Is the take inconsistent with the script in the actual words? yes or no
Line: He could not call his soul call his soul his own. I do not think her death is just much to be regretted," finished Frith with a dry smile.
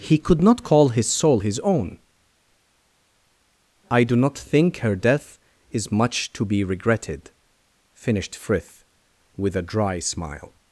yes